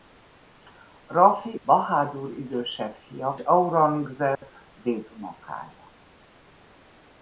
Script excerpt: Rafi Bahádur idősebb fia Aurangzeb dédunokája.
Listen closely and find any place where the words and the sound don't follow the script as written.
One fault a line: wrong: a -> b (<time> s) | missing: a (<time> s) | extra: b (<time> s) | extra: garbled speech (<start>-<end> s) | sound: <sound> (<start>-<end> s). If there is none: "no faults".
sound: dropout (4.4-4.4 s)